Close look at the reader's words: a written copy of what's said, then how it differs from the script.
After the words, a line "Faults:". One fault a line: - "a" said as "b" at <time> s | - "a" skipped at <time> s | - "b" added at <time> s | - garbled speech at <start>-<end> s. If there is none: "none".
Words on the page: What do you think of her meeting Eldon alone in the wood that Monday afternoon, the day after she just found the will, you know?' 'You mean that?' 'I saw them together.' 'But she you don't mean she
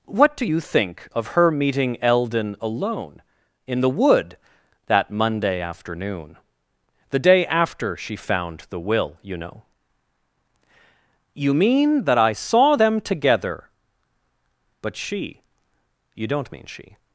What do you think of her meeting Eldon alone in the wood that Monday afternoon, the day after she found the will, you know?' 'You mean that?' 'I saw them together.' 'But she you don't mean she
Faults:
- "just" skipped at 8.2 s